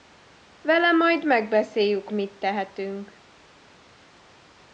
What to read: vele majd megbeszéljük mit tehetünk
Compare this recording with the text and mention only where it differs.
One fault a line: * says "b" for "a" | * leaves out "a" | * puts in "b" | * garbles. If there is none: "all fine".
all fine